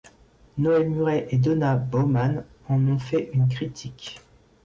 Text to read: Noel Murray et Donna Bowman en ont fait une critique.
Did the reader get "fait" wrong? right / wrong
right